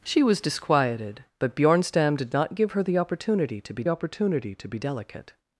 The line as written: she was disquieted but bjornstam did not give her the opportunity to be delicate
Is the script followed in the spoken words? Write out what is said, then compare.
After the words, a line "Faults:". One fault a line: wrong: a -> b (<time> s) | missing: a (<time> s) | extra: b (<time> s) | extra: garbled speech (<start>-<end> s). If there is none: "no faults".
she was disquieted but bjornstam did not give her the opportunity to be opportunity to be delicate
Faults:
extra: opportunity to be (3.9 s)